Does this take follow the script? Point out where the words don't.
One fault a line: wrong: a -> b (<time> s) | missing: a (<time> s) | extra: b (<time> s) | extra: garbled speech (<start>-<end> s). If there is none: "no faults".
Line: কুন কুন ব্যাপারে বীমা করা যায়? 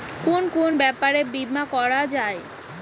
no faults